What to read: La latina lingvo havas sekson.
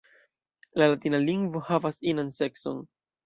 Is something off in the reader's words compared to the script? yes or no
yes